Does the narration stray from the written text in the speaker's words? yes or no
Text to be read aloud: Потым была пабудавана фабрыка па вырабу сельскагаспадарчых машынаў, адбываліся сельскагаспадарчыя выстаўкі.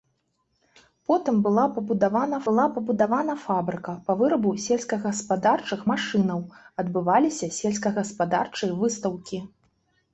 yes